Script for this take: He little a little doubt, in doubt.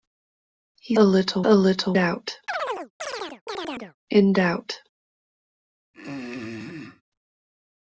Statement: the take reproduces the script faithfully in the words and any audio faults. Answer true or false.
false